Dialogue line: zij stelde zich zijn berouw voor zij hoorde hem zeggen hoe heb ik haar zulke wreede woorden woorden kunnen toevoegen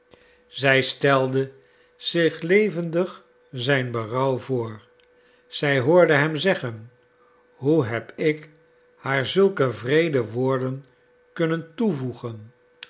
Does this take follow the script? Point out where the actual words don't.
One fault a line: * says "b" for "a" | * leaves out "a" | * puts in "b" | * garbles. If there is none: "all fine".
* puts in "levendig"
* leaves out "woorden"